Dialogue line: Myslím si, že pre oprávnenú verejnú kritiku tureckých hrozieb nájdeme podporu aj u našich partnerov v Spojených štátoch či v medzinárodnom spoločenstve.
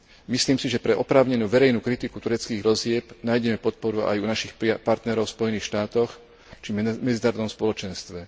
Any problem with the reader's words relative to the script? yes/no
no